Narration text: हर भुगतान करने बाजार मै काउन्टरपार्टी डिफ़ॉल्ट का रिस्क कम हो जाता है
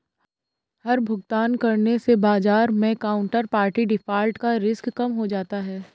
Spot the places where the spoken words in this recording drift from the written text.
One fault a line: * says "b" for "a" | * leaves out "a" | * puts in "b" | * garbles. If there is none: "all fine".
* puts in "से"